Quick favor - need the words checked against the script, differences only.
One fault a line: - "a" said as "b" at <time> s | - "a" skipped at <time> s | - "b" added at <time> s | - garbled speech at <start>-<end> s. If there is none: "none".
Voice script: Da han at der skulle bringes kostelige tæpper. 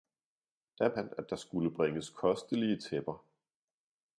none